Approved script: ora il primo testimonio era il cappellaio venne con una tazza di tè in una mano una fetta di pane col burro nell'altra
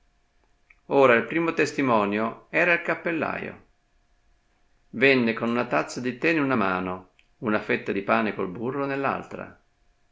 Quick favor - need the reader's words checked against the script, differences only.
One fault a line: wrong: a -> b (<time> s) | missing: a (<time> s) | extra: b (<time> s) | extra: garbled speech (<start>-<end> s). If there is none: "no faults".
no faults